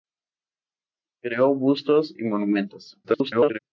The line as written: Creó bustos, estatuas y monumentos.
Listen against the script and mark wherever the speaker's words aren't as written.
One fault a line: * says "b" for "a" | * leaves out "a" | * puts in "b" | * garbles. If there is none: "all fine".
* leaves out "estatuas"
* garbles